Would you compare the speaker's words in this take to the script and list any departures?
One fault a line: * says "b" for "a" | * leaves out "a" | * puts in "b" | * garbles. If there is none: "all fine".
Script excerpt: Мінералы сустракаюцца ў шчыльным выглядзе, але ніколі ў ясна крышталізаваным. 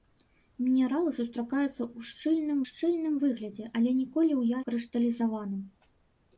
* puts in "шчыльным"
* leaves out "ясна"